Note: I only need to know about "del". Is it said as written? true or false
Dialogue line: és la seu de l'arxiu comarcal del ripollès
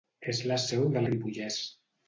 false